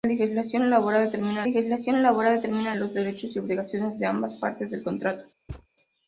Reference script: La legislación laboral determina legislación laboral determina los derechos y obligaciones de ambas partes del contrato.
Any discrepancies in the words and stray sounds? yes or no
yes